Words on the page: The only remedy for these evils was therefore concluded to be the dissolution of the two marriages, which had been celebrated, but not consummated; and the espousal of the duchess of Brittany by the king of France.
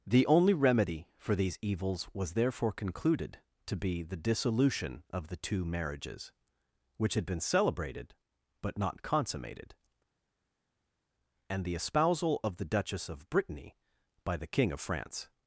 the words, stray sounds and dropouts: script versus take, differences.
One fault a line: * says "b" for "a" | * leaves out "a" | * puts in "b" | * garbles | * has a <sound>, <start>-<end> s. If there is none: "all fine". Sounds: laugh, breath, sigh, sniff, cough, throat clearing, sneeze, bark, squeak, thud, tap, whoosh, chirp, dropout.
all fine